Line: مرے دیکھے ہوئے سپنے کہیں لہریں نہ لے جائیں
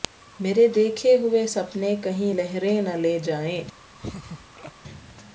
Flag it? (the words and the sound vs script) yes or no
yes